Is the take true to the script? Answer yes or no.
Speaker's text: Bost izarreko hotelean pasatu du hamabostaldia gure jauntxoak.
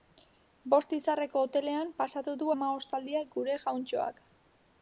yes